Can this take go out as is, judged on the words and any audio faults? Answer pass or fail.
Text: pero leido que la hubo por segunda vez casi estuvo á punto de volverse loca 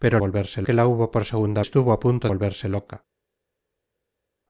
fail